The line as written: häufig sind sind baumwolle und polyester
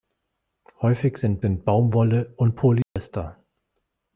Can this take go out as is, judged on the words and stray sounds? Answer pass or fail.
fail